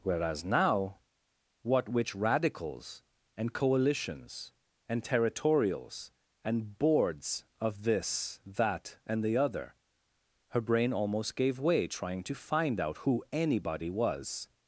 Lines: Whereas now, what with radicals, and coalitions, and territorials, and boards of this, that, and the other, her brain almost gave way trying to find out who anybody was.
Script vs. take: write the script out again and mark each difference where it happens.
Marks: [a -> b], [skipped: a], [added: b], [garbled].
Whereas now, what [with -> which] radicals, and coalitions, and territorials, and boards of this, that, and the other, her brain almost gave way trying to find out who anybody was.